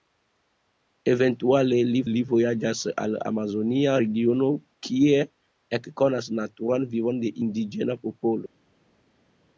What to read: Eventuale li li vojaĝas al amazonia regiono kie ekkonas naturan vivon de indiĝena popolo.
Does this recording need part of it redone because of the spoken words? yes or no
no